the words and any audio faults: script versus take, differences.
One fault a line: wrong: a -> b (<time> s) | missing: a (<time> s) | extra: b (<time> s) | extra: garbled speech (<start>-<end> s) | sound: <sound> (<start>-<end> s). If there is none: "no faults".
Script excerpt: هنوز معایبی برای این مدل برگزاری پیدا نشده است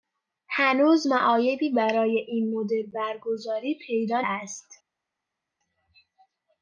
missing: نشده (4.2 s)